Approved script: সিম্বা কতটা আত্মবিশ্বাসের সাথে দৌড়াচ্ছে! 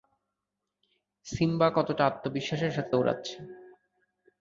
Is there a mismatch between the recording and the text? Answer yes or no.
no